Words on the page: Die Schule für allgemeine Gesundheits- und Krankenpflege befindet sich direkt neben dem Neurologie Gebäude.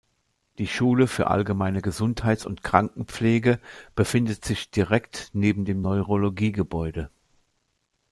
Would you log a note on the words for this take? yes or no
no